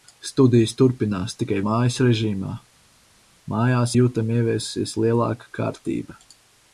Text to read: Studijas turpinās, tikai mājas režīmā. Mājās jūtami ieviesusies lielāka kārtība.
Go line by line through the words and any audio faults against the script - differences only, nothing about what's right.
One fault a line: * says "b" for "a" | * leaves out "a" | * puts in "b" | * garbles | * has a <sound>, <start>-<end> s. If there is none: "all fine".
all fine